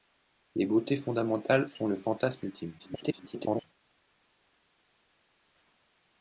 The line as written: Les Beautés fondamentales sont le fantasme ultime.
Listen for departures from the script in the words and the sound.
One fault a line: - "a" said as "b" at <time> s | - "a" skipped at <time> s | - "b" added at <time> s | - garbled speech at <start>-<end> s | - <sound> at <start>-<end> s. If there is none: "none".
- garbled speech at 2.8-3.6 s